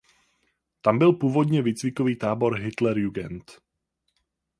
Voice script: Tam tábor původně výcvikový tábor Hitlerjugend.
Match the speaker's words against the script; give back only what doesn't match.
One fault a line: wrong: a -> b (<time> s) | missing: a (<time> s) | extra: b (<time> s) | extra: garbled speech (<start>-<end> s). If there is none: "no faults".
wrong: tábor -> byl (1.0 s)